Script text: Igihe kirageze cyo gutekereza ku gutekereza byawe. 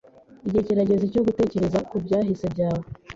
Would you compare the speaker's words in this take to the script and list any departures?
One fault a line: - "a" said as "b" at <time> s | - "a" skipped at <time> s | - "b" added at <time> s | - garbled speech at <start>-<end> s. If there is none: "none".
- "gutekereza" said as "byahise" at 2.0 s